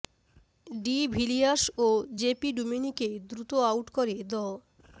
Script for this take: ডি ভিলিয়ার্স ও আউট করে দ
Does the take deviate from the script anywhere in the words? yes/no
yes